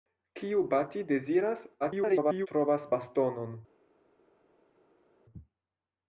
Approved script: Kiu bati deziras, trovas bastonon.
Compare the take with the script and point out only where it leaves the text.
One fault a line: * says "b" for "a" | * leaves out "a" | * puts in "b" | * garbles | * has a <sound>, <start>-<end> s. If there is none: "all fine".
* garbles